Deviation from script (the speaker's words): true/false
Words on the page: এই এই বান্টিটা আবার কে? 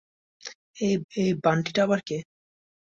false